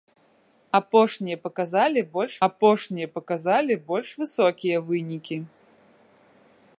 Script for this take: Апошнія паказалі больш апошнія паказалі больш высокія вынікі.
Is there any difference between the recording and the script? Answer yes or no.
no